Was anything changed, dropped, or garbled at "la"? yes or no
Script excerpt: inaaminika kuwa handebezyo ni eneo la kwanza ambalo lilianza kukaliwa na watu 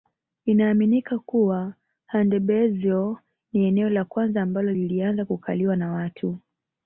no